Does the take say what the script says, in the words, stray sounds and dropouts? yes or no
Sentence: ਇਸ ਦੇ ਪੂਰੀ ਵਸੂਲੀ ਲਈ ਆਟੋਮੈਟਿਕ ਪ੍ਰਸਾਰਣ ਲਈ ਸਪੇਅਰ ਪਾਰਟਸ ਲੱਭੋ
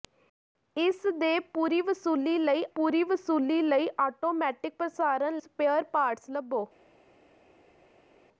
no